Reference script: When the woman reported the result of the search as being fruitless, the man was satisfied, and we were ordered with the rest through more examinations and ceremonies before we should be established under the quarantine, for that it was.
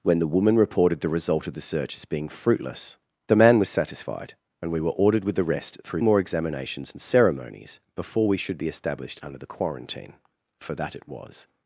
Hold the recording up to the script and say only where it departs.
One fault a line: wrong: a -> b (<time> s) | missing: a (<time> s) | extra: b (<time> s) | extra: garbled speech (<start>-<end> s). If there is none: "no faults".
no faults